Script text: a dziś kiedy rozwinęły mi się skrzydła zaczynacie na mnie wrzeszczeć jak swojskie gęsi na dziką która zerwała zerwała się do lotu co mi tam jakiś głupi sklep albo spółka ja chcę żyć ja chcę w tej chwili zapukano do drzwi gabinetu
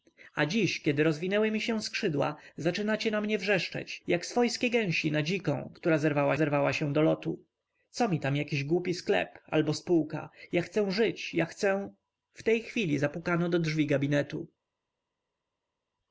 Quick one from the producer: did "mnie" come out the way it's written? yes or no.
yes